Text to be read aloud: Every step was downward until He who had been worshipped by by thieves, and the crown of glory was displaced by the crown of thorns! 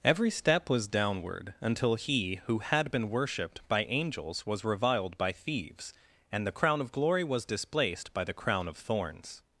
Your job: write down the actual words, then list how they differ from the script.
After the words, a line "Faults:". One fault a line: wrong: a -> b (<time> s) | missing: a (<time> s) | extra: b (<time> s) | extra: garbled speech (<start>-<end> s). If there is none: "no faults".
Every step was downward until He who had been worshipped by angels was reviled by thieves, and the crown of glory was displaced by the crown of thorns!
Faults:
extra: angels was reviled (3.8 s)